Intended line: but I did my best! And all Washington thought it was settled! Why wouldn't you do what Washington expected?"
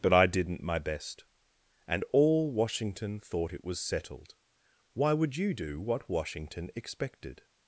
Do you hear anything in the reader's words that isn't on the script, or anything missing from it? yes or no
yes